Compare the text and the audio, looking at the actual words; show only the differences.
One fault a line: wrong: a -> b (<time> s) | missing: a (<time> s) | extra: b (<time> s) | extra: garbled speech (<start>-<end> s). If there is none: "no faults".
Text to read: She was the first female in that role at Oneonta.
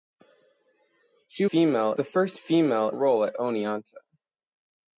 wrong: was -> female (1.4 s)
missing: in that (2.9 s)